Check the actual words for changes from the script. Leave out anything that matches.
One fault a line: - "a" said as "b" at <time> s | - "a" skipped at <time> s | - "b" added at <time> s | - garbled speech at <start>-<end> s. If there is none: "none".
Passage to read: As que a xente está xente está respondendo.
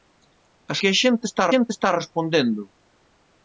none